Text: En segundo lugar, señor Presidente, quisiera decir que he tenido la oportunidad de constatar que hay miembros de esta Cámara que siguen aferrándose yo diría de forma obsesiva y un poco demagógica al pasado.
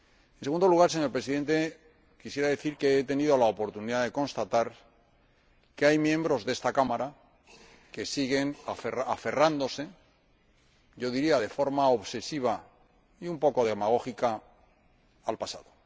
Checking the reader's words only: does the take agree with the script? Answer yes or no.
yes